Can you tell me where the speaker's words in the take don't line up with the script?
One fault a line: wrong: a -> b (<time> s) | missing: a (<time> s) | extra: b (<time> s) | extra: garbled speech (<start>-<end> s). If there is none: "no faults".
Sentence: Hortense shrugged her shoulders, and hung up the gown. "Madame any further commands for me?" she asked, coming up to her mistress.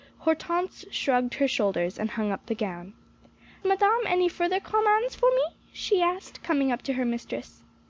no faults